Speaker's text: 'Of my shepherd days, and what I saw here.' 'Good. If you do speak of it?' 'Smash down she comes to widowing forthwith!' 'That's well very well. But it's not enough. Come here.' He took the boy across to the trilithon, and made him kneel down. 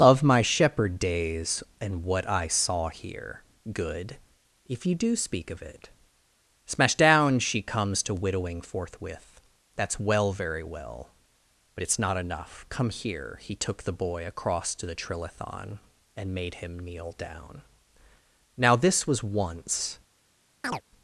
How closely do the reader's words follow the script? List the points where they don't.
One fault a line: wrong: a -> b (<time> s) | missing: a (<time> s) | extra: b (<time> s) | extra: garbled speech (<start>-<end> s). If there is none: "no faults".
extra: Now this was once (18.6 s)